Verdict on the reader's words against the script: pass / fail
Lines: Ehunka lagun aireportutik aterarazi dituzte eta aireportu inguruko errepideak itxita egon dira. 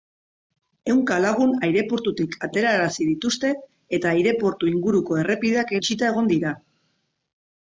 pass